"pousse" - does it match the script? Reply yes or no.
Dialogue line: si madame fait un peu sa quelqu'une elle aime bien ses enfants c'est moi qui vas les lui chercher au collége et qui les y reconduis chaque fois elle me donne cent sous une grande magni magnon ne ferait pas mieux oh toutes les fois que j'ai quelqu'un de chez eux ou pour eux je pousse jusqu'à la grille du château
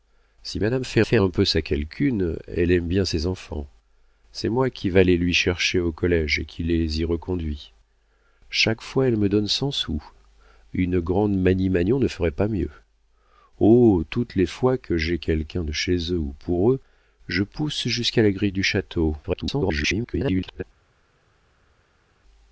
yes